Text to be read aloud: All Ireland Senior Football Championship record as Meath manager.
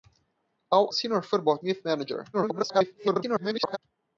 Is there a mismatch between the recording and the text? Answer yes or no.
yes